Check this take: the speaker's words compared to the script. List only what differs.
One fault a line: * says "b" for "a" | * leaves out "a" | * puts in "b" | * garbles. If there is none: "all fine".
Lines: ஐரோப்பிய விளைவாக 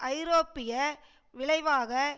all fine